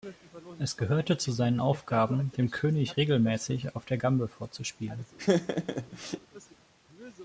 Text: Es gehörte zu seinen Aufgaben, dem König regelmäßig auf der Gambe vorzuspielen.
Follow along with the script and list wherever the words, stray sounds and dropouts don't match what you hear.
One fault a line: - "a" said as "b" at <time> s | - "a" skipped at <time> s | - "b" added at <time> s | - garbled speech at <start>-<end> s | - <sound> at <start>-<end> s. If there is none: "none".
- laugh at 5.2-6.2 s